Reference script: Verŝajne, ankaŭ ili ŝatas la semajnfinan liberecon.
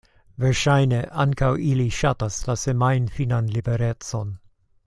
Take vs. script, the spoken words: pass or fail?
pass